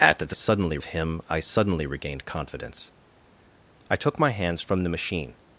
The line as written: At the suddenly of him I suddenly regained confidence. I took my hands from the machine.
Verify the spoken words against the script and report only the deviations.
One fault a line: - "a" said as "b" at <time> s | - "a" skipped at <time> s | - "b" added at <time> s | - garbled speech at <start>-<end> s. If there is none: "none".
none